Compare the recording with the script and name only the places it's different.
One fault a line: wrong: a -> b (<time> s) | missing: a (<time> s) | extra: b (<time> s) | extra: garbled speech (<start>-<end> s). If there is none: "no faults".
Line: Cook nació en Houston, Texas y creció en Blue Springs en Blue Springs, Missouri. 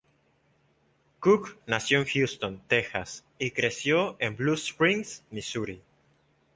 missing: en Blue Springs (5.2 s)